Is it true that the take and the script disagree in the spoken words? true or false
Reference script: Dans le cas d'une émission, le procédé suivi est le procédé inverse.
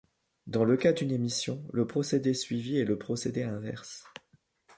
false